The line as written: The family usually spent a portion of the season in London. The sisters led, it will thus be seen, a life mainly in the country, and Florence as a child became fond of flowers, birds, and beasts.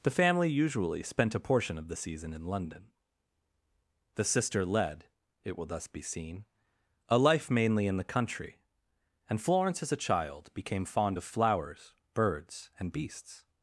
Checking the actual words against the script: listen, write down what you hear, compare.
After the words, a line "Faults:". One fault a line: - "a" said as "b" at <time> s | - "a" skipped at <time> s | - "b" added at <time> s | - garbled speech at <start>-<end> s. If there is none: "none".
The family usually spent a portion of the season in London. The sister led, it will thus be seen, a life mainly in the country, and Florence as a child became fond of flowers, birds, and beasts.
Faults:
- "sisters" said as "sister" at 4.2 s